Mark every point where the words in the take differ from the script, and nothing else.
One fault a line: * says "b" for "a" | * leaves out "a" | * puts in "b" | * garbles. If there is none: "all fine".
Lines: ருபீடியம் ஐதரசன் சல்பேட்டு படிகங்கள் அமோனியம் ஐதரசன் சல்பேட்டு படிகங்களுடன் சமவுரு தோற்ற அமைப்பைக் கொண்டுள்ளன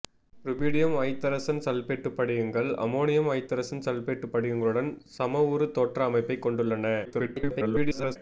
* garbles